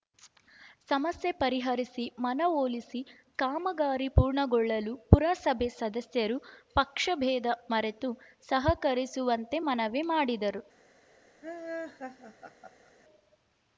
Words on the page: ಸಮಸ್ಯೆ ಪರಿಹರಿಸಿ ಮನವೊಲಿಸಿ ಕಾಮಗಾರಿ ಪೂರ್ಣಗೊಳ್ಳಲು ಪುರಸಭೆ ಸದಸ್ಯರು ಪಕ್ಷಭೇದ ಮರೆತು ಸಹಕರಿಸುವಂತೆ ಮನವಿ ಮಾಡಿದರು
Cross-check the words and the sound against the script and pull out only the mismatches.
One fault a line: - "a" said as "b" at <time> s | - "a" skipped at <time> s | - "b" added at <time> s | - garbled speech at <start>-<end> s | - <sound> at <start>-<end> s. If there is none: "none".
- laugh at 11.4-12.9 s